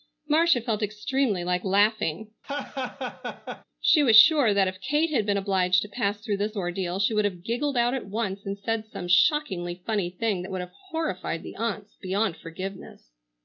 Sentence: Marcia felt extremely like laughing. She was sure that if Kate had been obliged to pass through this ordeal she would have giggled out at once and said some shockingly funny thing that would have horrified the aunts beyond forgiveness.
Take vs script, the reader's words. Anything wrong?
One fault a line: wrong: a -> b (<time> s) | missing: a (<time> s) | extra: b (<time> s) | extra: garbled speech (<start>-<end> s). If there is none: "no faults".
no faults